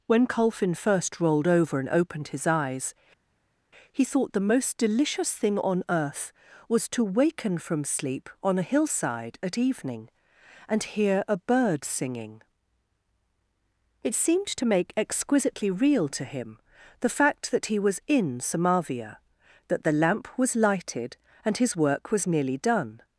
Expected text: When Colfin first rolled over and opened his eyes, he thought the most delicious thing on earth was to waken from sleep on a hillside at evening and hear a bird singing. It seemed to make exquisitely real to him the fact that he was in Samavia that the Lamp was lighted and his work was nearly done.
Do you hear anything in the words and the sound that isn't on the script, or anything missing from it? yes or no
no